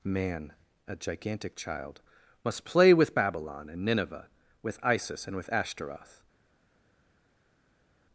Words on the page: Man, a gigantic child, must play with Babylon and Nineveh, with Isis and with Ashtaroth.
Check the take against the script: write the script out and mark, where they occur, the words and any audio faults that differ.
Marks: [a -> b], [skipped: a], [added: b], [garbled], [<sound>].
Man, a gigantic child, must play with Babylon and Nineveh, with Isis and with Ashtaroth.